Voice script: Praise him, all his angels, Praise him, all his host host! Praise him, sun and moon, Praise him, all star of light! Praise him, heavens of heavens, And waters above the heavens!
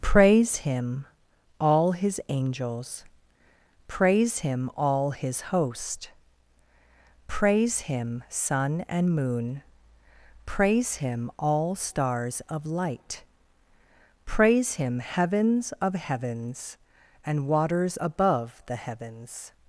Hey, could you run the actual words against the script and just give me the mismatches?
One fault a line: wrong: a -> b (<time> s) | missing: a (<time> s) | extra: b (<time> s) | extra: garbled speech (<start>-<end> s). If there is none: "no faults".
missing: host (6.1 s)
wrong: star -> stars (11.8 s)